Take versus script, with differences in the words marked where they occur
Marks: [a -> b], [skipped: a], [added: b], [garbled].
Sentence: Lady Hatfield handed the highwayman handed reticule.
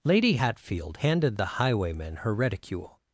Lady Hatfield handed the highwayman [handed -> her] reticule.